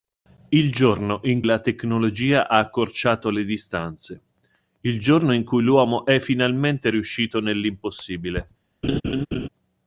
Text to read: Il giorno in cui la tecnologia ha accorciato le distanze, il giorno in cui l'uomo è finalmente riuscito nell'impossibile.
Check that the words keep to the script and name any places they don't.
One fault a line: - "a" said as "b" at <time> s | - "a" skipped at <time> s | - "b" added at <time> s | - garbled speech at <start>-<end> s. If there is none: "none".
- "cui" skipped at 1.4 s